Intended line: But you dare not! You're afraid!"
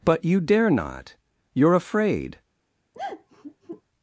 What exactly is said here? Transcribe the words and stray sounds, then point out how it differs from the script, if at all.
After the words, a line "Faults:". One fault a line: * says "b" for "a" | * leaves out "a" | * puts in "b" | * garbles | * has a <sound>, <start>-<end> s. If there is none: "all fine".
But you dare not! You're afraid!"
Faults:
* has a sigh, 2.9-3.8 s